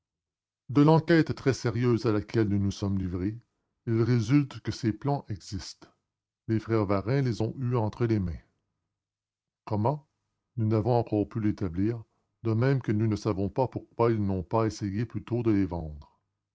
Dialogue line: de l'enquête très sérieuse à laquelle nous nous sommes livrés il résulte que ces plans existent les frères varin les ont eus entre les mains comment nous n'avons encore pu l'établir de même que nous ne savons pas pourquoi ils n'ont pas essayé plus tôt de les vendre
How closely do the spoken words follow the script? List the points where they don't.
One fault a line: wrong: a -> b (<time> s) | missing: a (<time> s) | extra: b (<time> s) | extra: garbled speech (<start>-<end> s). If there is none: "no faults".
no faults